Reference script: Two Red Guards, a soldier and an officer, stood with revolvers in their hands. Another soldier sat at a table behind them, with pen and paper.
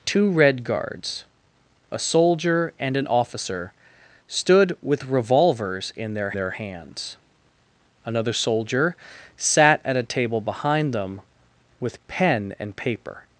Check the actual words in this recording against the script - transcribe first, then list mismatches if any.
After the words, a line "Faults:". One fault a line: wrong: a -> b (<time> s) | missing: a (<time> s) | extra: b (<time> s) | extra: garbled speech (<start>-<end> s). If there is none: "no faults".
Two Red Guards, a soldier and an officer, stood with revolvers in their their hands. Another soldier sat at a table behind them, with pen and paper.
Faults:
extra: their (6.3 s)